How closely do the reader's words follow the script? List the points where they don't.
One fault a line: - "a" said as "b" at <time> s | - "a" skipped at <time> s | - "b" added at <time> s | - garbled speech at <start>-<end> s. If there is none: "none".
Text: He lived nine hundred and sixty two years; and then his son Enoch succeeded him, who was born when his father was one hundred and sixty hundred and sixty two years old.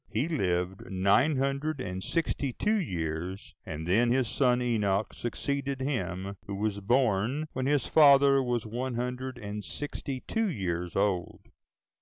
- "hundred and sixty" skipped at 10.2 s